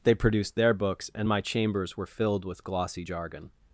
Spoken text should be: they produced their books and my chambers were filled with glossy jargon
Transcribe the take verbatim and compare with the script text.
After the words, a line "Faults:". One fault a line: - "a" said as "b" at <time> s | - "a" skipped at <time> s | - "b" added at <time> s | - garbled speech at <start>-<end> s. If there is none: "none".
they produced their books and my chambers were filled with glossy jargon
Faults:
none